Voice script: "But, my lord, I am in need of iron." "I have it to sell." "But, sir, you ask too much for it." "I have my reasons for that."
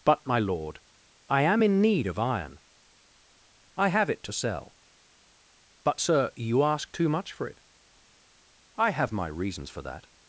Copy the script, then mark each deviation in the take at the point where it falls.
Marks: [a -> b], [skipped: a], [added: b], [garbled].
"But, my lord, I am in need of iron." "I have it to sell." "But, sir, you ask too much for it." "I have my reasons for that."